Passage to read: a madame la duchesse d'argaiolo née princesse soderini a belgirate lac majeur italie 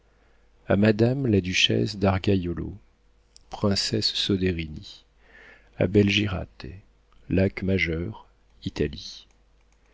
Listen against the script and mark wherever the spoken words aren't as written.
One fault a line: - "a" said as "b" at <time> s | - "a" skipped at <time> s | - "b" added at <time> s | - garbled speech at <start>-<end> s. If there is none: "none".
- "née" skipped at 2.7 s